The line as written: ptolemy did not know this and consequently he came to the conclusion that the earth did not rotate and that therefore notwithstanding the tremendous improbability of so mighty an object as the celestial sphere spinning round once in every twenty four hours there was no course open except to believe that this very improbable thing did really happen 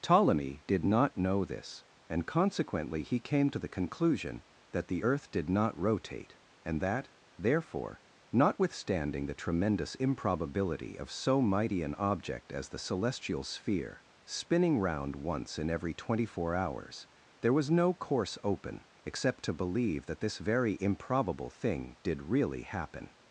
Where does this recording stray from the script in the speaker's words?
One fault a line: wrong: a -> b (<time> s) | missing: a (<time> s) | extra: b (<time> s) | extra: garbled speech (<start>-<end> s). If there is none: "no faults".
no faults